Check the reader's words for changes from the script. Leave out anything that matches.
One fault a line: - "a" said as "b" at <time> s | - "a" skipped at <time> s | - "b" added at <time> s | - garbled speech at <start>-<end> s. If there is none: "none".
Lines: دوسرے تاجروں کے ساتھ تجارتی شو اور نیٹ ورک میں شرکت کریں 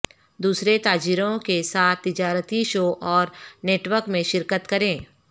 none